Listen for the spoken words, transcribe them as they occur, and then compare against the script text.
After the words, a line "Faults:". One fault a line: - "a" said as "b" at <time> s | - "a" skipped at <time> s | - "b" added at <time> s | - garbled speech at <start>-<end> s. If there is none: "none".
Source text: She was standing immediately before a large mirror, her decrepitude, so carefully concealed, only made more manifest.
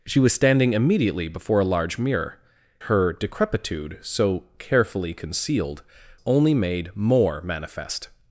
She was standing immediately before a large mirror, her decrepitude, so carefully concealed, only made more manifest.
Faults:
none